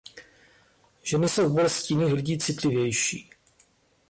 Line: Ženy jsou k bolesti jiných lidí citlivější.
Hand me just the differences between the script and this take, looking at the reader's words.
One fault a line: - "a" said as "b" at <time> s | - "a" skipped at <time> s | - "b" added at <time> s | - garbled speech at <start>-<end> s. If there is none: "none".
none